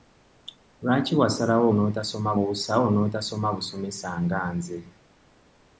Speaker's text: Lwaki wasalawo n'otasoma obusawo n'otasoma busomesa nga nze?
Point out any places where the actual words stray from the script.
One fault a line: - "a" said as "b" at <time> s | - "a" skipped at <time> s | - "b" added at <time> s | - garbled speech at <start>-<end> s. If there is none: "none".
none